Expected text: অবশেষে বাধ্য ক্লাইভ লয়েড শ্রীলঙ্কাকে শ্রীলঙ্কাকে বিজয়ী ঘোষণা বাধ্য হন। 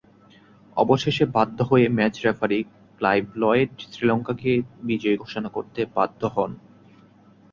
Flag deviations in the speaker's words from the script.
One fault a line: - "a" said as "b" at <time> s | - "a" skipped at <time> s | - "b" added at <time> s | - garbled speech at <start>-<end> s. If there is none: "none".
- "হয়ে ম্যাচ রেফারি" added at 1.6 s
- "শ্রীলঙ্কাকে" skipped at 4.5 s
- "করতে" added at 5.5 s